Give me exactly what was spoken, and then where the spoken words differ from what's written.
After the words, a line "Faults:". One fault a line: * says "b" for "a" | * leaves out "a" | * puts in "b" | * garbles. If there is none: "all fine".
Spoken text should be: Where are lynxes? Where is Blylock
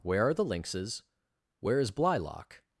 Where are the lynxes? Where is Blylock
Faults:
* puts in "the"